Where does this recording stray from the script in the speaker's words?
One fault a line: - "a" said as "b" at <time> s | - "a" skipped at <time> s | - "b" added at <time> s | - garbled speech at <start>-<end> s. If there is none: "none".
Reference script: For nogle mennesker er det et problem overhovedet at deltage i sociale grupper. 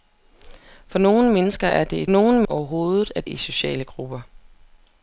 - "problem" said as "nogle" at 2.1 s
- "deltage" skipped at 3.3 s